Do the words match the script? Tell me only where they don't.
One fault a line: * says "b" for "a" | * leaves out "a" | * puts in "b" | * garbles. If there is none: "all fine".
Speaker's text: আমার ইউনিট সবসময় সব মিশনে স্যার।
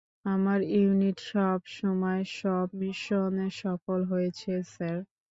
* puts in "সফল হয়েছে"